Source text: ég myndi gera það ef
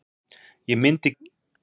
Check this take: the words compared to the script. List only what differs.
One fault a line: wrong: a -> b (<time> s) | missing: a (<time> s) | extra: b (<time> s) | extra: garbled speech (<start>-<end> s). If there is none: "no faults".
missing: gera það (1.1 s)